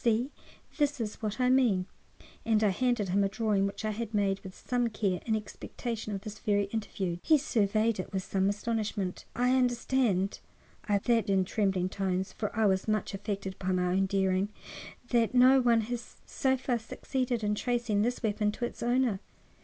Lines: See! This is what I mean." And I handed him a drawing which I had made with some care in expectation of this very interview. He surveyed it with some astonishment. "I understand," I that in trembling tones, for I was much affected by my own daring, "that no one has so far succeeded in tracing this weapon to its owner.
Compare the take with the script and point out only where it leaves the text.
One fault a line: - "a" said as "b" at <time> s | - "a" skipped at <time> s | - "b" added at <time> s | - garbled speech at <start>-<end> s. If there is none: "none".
none